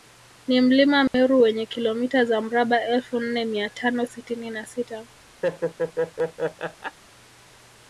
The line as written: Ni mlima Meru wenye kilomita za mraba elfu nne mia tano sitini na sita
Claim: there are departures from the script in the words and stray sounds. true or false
true